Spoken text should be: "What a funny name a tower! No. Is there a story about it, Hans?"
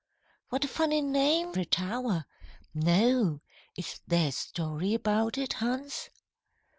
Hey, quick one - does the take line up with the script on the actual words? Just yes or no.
yes